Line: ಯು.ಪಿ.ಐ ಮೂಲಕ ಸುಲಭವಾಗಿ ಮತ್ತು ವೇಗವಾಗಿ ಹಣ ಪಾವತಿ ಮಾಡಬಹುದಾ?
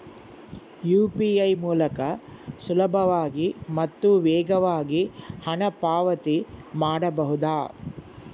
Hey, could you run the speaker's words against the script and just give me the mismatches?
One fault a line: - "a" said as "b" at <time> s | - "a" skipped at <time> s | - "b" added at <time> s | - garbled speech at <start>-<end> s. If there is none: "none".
none